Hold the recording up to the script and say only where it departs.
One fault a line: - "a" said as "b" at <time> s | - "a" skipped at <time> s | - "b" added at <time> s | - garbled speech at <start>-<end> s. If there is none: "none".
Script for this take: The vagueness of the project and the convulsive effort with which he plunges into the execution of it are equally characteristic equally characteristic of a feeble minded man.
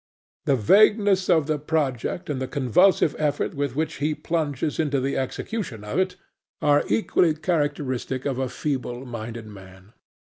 - "equally characteristic" skipped at 8.2 s